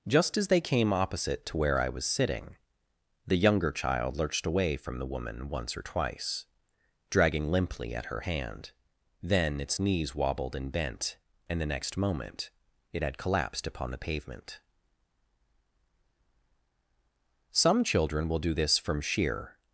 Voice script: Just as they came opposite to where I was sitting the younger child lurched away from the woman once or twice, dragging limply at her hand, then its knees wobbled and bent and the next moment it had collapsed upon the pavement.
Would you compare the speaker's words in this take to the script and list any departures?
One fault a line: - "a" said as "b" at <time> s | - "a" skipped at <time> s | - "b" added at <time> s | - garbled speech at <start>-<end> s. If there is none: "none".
- "Some children will do this from sheer" added at 17.5 s